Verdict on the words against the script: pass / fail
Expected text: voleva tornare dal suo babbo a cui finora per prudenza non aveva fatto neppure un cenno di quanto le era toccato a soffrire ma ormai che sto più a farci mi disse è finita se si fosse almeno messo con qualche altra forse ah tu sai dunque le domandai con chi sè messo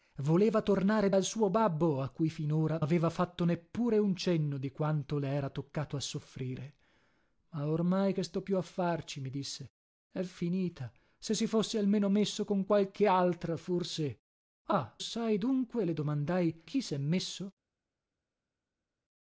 fail